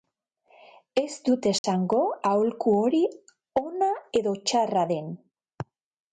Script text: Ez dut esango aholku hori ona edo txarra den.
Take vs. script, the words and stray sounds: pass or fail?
fail